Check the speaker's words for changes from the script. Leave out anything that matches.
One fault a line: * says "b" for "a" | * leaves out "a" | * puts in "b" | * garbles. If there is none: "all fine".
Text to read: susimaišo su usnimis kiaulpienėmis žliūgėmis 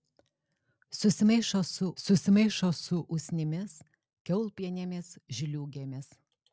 * puts in "susimaišo su"